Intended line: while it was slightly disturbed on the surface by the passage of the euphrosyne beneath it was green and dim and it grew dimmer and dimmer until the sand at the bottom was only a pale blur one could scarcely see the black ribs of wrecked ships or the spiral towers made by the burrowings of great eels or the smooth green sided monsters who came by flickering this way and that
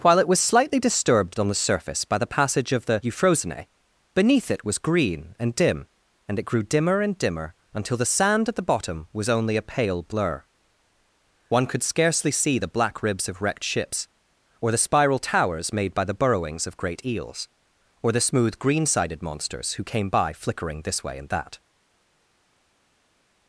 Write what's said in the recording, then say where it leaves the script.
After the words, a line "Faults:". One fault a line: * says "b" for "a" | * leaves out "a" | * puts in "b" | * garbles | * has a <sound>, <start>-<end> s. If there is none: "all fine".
while it was slightly disturbed on the surface by the passage of the euphrosyne beneath it was green and dim and it grew dimmer and dimmer until the sand at the bottom was only a pale blur one could scarcely see the black ribs of wrecked ships or the spiral towers made by the burrowings of great eels or the smooth green sided monsters who came by flickering this way and that
Faults:
all fine